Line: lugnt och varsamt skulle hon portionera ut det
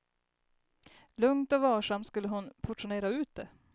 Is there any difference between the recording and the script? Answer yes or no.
no